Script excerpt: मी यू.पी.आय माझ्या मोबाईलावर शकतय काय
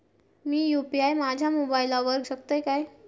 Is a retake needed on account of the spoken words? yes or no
no